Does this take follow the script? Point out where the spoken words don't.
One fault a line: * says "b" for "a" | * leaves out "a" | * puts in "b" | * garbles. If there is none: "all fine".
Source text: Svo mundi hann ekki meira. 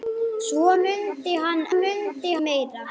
* says "mundi" for "ekki"